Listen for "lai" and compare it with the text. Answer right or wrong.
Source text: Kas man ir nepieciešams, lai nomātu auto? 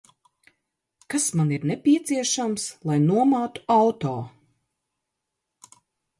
right